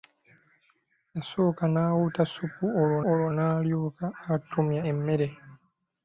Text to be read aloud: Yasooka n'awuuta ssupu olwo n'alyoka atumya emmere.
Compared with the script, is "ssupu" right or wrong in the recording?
right